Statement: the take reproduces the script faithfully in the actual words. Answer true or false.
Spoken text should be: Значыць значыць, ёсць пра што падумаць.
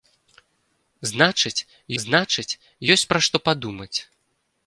true